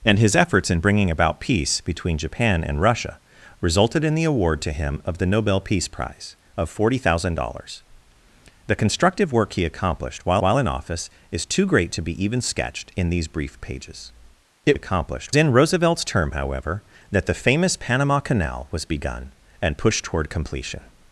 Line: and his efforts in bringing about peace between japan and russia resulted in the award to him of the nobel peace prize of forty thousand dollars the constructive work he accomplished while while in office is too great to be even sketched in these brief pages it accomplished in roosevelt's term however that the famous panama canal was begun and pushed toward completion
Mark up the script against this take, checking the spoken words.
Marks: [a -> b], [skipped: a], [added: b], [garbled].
and his efforts in bringing about peace between japan and russia resulted in the award to him of the nobel peace prize of forty thousand dollars the constructive work he accomplished while while in office is too great to be even sketched in these brief pages it accomplished in roosevelt's term however that the famous panama canal was begun and pushed toward completion